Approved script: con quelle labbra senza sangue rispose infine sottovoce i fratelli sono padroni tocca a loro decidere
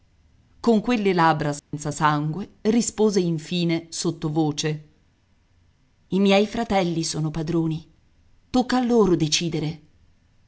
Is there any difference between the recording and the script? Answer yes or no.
yes